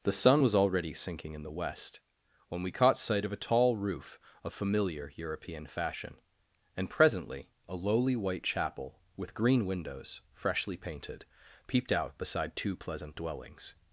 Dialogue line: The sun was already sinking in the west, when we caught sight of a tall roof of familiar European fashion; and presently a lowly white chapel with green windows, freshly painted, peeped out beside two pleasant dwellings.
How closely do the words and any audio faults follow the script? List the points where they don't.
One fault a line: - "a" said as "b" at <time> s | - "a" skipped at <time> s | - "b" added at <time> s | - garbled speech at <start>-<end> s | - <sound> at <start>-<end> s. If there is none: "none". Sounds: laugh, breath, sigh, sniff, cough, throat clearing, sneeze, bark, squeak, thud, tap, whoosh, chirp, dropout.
none